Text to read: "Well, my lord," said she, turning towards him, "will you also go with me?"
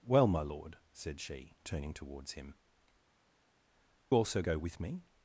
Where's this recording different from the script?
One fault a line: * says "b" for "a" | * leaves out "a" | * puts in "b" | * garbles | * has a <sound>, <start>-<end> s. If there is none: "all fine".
* leaves out "will you"